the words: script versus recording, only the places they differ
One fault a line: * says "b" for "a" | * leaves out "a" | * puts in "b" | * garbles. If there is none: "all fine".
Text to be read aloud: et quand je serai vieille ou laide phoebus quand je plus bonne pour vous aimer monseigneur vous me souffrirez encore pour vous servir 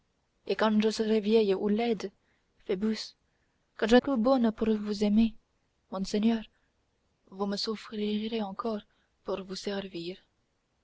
all fine